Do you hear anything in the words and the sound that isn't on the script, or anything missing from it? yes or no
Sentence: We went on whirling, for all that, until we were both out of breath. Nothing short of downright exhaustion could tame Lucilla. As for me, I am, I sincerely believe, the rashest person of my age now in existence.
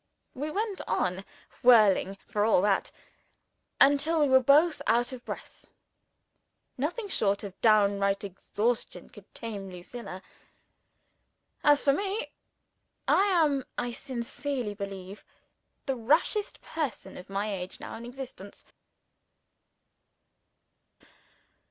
no